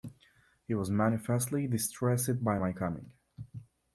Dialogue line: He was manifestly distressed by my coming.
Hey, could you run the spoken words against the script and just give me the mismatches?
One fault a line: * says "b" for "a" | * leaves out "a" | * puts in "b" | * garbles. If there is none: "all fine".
all fine